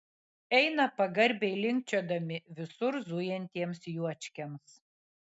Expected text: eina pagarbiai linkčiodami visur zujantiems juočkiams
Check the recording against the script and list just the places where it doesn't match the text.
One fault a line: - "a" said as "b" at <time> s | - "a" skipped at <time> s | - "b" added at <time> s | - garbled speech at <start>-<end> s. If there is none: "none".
none